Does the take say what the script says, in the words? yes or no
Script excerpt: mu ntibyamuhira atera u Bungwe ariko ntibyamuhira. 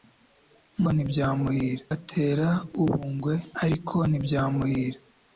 yes